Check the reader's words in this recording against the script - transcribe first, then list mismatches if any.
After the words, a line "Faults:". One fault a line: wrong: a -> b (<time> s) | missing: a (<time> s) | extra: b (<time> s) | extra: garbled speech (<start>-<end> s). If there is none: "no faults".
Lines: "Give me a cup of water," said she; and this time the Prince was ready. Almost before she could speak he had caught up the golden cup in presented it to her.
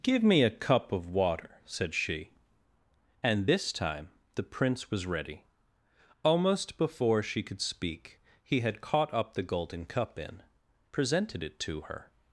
"Give me a cup of water," said she; and this time the Prince was ready. Almost before she could speak he had caught up the golden cup in presented it to her.
Faults:
no faults